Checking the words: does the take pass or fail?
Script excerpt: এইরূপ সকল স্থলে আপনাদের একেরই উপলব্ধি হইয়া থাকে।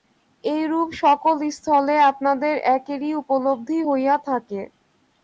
pass